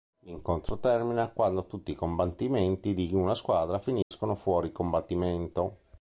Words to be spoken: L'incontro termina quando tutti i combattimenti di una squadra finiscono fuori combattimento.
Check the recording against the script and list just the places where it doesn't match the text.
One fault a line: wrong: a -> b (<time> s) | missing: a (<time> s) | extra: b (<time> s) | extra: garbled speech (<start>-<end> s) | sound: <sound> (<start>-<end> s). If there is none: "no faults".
sound: dropout (4.0-4.1 s)